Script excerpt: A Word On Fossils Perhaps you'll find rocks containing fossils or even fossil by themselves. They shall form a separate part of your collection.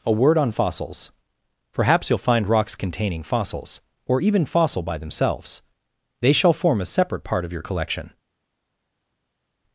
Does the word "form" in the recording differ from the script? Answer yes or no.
no